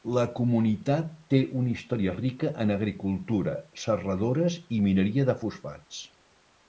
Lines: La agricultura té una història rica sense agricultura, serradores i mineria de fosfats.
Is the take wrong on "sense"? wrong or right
wrong